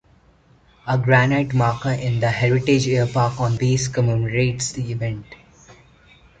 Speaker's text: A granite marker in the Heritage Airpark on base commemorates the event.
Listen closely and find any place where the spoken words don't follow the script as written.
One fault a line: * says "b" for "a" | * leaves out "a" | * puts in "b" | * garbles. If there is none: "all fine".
all fine